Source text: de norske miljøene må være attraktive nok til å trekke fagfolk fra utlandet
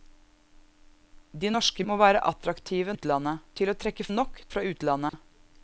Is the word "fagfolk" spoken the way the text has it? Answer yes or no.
no